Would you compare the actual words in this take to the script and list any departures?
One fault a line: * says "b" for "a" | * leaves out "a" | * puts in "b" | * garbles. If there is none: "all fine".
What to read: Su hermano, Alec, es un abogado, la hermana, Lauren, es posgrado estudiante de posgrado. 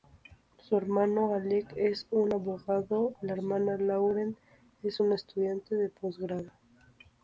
* says "una" for "posgrado"